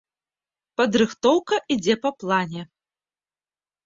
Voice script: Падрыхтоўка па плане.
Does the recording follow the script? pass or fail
fail